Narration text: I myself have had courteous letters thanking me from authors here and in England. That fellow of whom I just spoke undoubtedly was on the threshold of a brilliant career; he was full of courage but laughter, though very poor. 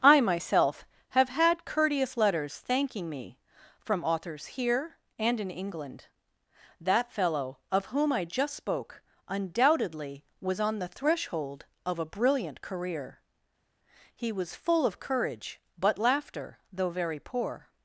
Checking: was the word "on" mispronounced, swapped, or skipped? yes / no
no